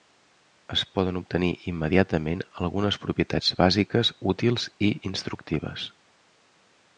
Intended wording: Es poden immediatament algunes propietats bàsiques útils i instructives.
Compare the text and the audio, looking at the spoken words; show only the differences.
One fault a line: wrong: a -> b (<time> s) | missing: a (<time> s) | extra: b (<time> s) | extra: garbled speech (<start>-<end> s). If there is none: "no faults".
extra: obtenir (1.2 s)